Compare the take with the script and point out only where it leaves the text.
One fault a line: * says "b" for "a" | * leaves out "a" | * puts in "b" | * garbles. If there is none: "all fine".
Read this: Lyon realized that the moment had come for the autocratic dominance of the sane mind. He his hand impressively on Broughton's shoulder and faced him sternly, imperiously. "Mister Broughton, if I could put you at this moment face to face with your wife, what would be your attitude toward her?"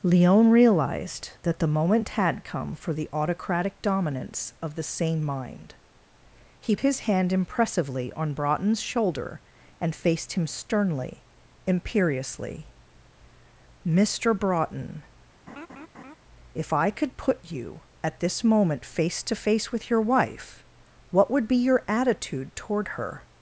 all fine